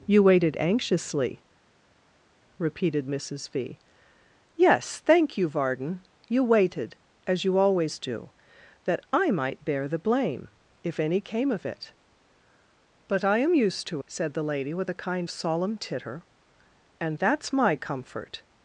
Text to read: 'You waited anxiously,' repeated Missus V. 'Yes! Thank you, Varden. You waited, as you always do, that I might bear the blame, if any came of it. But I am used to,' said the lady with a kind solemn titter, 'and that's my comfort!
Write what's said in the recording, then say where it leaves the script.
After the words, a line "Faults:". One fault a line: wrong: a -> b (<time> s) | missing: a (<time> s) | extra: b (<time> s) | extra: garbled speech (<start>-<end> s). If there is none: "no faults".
'You waited anxiously,' repeated Missus V. 'Yes! Thank you, Varden. You waited, as you always do, that I might bear the blame, if any came of it. But I am used to,' said the lady with a kind solemn titter, 'and that's my comfort!
Faults:
no faults